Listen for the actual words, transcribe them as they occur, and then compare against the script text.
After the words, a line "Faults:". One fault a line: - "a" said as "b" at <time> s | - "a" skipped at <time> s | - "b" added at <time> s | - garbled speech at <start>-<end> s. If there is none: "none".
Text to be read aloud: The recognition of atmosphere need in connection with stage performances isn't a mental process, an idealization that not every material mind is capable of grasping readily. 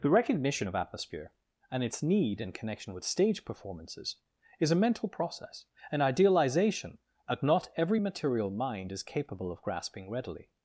The recognition of atmosphere and its need in connection with stage performances is a mental process, an idealization that not every material mind is capable of grasping readily.
Faults:
- "and its" added at 1.7 s
- "isn't" said as "is" at 4.6 s